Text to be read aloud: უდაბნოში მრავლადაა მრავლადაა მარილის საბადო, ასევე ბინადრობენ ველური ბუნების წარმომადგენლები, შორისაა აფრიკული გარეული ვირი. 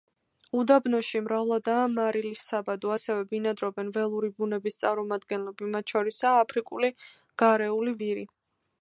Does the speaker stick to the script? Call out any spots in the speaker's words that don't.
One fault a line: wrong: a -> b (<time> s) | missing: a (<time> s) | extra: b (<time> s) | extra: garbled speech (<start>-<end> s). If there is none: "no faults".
missing: მრავლადაა (1.8 s)
extra: მათ (5.8 s)